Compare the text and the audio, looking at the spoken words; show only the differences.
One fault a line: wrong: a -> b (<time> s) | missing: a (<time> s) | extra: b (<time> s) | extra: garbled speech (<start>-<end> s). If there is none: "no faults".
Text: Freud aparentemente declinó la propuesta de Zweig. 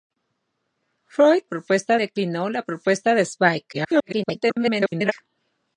wrong: aparentemente -> propuesta (1.4 s)
extra: garbled speech (3.7-5.1 s)